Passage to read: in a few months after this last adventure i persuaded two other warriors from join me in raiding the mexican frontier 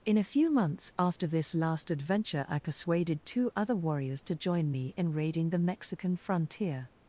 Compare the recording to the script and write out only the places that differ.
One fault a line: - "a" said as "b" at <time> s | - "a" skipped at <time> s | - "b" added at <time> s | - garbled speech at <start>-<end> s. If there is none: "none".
- "from" said as "to" at 4.2 s